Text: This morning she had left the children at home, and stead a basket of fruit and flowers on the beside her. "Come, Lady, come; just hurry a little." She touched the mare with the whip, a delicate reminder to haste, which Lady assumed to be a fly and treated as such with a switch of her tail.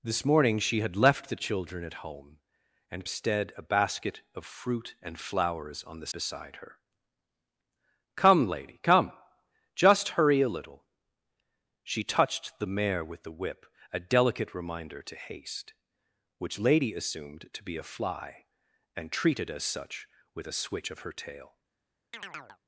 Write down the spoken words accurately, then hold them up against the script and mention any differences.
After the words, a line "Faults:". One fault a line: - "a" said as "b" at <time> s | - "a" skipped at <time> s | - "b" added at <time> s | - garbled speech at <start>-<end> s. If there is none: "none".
This morning she had left the children at home, and stead a basket of fruit and flowers on the beside her. "Come, Lady, come; just hurry a little." She touched the mare with the whip, a delicate reminder to haste, which Lady assumed to be a fly and treated as such with a switch of her tail.
Faults:
none